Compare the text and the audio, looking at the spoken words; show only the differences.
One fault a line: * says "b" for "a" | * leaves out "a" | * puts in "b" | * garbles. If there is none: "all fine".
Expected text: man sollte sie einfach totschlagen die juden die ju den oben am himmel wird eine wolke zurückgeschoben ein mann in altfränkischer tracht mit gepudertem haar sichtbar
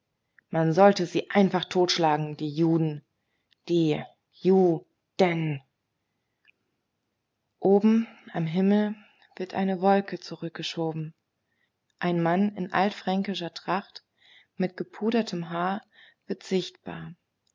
* puts in "wird"